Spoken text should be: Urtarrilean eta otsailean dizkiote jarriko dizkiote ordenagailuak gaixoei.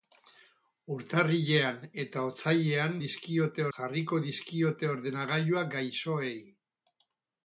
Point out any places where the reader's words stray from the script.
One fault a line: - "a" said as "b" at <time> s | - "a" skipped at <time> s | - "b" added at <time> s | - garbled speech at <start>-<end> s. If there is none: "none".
none